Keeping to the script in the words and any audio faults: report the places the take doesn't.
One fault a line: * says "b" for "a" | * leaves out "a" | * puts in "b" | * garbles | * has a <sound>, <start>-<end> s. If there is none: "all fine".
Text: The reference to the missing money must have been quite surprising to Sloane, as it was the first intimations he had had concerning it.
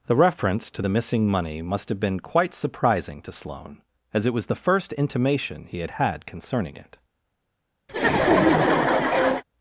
* says "intimation" for "intimations"
* has a laugh, 7.9-9.4 s